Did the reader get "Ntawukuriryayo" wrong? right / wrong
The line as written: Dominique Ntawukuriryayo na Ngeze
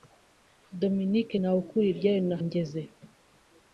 right